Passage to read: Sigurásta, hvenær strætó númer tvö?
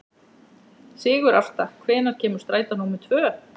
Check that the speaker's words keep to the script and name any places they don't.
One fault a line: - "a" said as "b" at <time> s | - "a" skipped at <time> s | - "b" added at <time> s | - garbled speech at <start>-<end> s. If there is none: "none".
- "kemur" added at 2.2 s